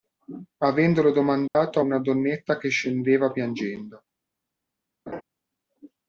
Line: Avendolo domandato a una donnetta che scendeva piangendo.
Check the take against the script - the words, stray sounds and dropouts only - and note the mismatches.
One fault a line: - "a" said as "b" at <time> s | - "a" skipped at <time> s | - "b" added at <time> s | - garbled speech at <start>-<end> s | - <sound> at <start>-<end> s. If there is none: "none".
- dropout at 1.5-1.6 s
- laugh at 5.1-5.2 s